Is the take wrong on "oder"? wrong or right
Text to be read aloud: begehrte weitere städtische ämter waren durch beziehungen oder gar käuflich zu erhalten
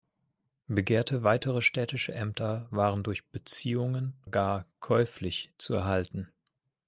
wrong